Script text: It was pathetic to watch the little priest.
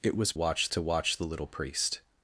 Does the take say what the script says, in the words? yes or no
no